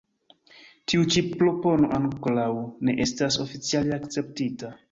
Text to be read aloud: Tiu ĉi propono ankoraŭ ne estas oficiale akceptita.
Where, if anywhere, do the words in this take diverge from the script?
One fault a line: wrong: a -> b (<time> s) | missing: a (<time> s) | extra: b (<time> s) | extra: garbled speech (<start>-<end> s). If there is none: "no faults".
no faults